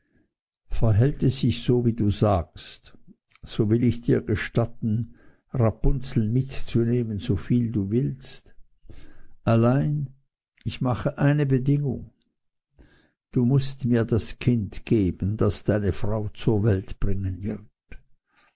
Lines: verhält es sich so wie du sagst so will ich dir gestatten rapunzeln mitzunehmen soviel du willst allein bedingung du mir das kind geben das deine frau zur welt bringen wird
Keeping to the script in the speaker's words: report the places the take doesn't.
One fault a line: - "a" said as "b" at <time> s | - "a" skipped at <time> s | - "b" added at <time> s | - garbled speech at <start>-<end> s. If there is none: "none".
- "ich mache eine" added at 10.6 s
- "mußt" added at 13.5 s